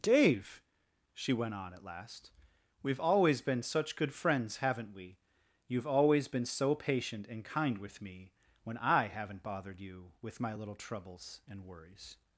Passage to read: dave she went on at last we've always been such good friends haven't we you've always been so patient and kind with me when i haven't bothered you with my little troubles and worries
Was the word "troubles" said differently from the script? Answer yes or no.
no